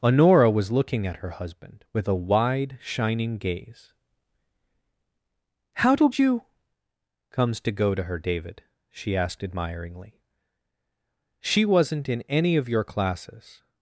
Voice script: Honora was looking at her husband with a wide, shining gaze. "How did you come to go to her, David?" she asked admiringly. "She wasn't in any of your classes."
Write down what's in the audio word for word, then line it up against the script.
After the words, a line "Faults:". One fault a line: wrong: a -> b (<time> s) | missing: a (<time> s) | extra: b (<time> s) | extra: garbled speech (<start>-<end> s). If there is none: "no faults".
Honora was looking at her husband with a wide, shining gaze. "How did you comes to go to her, David?" she asked admiringly. "She wasn't in any of your classes."
Faults:
wrong: come -> comes (7.3 s)